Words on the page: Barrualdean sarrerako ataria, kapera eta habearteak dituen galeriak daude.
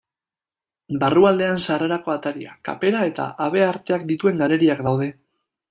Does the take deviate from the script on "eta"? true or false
false